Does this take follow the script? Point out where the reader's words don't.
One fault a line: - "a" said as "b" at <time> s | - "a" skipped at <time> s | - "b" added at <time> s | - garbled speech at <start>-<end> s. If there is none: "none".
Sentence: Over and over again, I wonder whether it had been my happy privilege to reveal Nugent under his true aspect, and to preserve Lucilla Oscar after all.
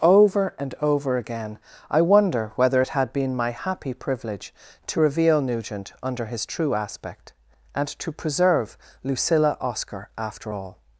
none